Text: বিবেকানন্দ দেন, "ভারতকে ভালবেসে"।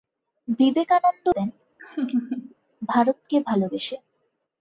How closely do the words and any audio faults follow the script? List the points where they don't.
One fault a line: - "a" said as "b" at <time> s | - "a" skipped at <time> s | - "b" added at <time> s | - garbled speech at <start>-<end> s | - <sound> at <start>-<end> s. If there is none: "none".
- laugh at 1.8-2.5 s